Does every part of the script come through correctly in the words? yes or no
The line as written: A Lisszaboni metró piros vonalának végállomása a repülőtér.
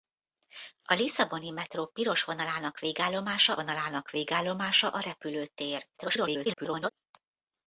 no